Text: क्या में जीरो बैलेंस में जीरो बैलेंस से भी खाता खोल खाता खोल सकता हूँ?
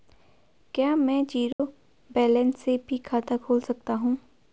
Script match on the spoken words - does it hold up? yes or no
no